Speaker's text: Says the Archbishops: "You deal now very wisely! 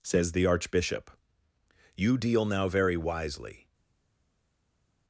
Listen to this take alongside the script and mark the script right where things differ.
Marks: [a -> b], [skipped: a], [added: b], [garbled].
Says the [Archbishops: -> Archbishop] "You deal now very wisely!